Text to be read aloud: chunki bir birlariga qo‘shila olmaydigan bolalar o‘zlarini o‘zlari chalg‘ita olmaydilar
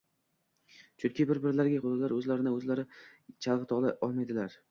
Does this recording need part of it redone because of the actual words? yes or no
yes